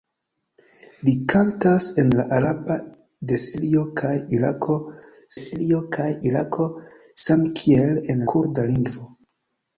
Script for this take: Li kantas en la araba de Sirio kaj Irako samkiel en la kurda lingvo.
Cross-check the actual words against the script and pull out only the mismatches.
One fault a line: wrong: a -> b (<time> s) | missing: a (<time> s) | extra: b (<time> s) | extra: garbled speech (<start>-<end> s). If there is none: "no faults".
extra: Sirio kaj Irako (5.4 s)
missing: la (8.2 s)